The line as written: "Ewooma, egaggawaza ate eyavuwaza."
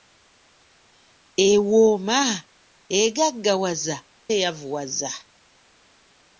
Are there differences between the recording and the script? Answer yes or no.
yes